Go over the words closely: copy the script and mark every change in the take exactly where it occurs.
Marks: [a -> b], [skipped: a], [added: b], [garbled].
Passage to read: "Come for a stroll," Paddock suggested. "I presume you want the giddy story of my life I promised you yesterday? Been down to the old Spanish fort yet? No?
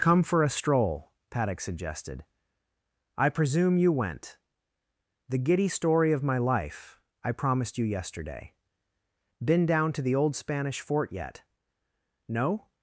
"Come for a stroll," Paddock suggested. "I presume you [want -> went] the giddy story of my life I promised you yesterday? Been down to the old Spanish fort yet? No?